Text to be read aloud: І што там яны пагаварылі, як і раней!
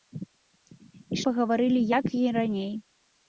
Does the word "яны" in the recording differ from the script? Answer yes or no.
yes